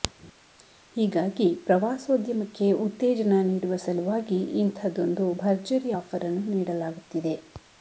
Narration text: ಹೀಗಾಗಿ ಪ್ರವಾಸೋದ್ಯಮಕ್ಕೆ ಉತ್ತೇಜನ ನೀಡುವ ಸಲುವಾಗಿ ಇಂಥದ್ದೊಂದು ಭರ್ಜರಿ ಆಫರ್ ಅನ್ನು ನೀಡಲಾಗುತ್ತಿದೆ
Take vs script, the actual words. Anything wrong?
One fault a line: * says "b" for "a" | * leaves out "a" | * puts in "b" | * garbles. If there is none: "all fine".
all fine